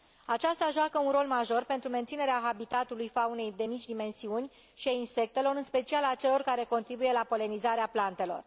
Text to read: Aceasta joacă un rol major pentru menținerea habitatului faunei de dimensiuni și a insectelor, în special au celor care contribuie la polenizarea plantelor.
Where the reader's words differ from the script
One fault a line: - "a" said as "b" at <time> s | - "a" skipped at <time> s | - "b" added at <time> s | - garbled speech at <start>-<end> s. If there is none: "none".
- "mici" added at 3.6 s
- "au" said as "a" at 6.0 s